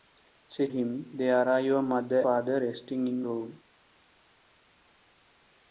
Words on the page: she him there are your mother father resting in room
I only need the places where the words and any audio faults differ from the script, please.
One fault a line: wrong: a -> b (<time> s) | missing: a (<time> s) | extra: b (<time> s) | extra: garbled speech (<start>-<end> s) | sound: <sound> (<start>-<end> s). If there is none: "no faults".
no faults